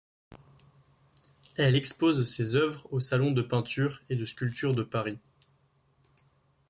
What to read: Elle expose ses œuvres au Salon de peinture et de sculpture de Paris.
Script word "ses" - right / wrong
right